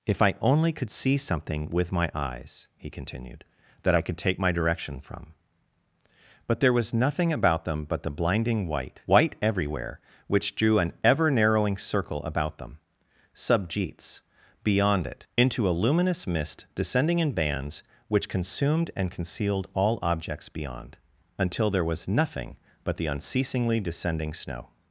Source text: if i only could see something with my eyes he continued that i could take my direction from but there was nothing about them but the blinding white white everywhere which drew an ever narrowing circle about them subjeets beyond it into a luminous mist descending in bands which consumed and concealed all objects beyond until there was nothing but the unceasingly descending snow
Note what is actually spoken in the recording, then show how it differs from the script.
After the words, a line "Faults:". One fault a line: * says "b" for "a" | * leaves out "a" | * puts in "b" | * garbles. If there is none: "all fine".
if i only could see something with my eyes he continued that i could take my direction from but there was nothing about them but the blinding white white everywhere which drew an ever narrowing circle about them subjeets beyond it into a luminous mist descending in bands which consumed and concealed all objects beyond until there was nothing but the unceasingly descending snow
Faults:
all fine